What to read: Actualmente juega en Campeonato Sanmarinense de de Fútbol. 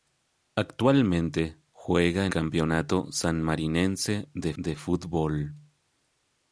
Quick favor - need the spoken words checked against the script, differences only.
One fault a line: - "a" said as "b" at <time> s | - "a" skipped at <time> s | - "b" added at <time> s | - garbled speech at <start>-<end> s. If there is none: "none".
none